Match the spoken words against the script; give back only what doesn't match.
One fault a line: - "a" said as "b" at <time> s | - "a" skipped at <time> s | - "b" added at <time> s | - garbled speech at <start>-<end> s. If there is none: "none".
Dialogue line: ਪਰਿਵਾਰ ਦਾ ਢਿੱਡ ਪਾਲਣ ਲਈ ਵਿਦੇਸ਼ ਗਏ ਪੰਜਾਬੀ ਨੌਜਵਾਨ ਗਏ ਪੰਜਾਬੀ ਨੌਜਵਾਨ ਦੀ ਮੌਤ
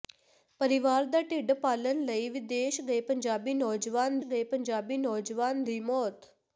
none